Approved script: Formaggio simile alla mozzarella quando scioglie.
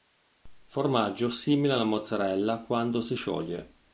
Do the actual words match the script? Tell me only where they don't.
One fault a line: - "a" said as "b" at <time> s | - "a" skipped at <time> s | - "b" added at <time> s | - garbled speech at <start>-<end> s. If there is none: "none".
- "si" added at 3.0 s